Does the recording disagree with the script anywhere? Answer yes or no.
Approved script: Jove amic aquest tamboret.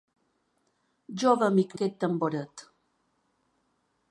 no